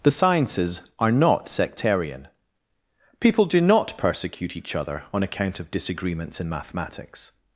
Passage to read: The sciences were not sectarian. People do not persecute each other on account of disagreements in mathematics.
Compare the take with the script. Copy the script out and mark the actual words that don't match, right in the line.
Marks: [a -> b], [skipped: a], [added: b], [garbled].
The sciences [were -> are] not sectarian. People do not persecute each other on account of disagreements in mathematics.